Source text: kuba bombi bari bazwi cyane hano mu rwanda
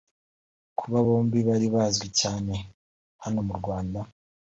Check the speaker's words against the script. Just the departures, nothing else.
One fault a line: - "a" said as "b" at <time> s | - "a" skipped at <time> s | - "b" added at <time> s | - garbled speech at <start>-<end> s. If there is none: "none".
none